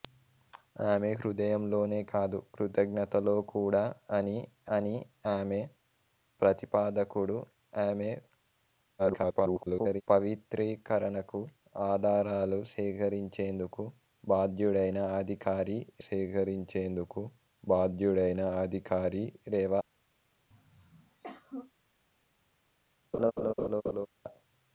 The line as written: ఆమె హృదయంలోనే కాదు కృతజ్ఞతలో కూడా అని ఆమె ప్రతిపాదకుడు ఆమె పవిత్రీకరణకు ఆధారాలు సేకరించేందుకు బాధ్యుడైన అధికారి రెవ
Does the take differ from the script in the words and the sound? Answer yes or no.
yes